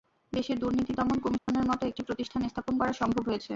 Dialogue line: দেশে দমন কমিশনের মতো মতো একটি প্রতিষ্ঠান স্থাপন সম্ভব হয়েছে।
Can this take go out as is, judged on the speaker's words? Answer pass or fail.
fail